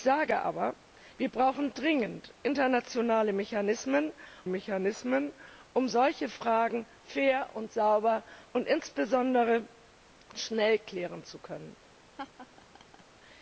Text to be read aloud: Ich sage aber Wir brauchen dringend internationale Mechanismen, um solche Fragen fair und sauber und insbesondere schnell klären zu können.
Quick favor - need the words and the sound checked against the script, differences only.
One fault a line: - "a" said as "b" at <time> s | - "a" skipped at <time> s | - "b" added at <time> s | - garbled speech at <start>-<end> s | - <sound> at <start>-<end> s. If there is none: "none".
- "Mechanismen" added at 4.5 s
- laugh at 12.2-13.0 s